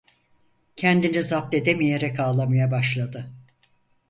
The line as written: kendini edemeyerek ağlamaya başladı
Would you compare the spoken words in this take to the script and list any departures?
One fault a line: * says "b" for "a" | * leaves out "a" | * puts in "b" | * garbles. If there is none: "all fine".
* puts in "zapt"